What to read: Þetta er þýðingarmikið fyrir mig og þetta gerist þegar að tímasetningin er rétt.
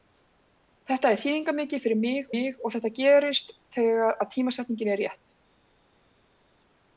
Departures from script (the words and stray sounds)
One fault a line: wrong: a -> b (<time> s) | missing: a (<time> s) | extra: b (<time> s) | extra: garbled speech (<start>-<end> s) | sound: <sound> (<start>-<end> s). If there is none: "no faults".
extra: mig (2.3 s)